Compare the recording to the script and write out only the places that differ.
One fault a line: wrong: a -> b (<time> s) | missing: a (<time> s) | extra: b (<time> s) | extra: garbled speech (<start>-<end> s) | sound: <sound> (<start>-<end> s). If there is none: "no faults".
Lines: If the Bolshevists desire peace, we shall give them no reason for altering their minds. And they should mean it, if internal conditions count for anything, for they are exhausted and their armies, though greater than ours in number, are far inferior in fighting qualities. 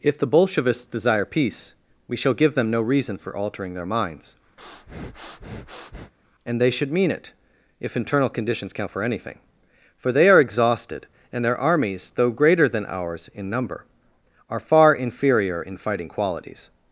sound: breath (4.6-6.1 s)